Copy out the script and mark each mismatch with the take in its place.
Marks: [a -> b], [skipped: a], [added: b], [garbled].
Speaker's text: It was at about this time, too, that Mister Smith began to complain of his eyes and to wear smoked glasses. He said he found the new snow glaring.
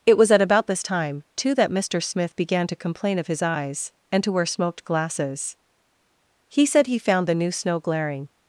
It was at about this time, too, that Mister Smith began to complain of his eyes and to wear smoked glasses. He said he found the new snow glaring.